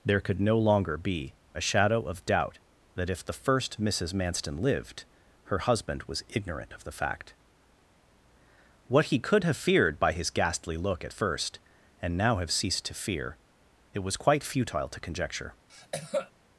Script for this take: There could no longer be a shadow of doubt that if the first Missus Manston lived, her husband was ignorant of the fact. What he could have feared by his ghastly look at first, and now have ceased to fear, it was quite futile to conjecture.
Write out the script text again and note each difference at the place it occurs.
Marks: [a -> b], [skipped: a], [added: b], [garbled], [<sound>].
There could no longer be a shadow of doubt that if the first Missus Manston lived, her husband was ignorant of the fact. What he could have feared by his ghastly look at first, and now have ceased to fear, it was quite futile to conjecture. [cough]